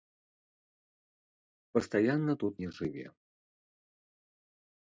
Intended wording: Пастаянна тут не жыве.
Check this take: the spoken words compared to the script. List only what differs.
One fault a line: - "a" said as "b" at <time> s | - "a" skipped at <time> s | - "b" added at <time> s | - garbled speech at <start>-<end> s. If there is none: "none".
none